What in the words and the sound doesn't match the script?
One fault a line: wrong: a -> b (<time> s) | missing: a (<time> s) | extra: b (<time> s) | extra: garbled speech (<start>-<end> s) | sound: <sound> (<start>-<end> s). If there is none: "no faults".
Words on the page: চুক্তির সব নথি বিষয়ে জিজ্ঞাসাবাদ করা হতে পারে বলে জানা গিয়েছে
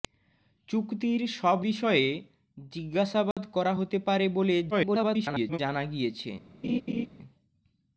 missing: নথি (1.6 s)
sound: dropout (3.3-3.4 s)
extra: garbled speech (4.7-5.6 s)
sound: laugh (6.6-7.1 s)